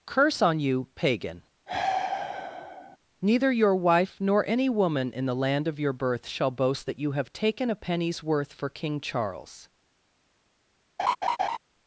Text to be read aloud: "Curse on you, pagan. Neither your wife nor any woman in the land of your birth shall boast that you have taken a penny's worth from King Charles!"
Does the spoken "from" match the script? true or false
false